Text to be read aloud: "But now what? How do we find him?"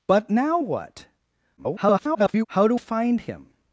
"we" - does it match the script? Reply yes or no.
no